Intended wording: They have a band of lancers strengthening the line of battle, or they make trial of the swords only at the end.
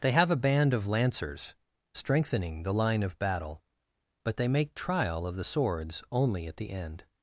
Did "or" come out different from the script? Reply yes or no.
yes